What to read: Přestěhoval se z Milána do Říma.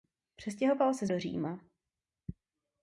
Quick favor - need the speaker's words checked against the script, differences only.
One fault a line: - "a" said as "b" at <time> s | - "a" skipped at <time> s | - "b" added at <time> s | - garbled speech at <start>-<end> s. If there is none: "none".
- "Milána" skipped at 1.1 s